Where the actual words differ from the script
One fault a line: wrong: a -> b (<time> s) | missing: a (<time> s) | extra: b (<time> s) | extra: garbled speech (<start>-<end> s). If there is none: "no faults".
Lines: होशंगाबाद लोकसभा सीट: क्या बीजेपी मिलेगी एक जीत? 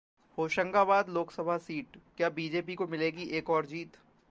extra: को (2.7 s)
extra: और (3.5 s)